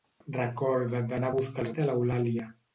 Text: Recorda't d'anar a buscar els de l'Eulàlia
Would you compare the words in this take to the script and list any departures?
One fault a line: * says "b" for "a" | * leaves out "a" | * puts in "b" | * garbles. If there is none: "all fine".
all fine